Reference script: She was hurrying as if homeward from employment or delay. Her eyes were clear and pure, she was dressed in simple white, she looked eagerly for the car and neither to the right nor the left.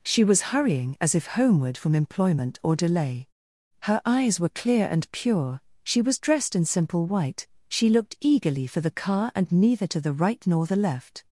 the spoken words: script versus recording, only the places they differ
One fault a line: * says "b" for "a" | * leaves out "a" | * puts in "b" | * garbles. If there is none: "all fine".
all fine